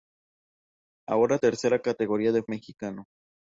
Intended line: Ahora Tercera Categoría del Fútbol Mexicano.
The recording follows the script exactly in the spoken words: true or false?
false